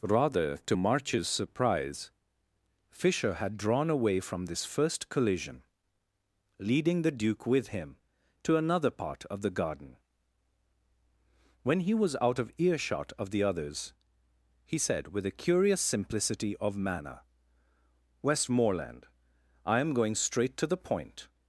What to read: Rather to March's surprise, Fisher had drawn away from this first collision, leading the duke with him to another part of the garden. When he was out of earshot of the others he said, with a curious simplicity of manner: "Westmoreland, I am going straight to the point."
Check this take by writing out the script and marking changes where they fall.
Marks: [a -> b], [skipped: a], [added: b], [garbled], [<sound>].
Rather to March's surprise, Fisher had drawn away from this first collision, leading the duke with him to another part of the garden. When he was out of earshot of the others he said, with a curious simplicity of manner: "Westmoreland, I am going straight to the point."